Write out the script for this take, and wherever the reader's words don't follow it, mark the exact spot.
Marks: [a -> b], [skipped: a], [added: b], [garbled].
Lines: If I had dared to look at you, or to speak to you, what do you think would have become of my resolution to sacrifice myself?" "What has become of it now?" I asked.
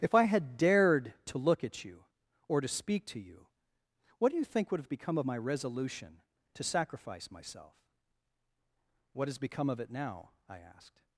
If I had dared to look at you, or to speak to you, what do you think would have become of my resolution to sacrifice myself?" "What has become of it now?" I asked.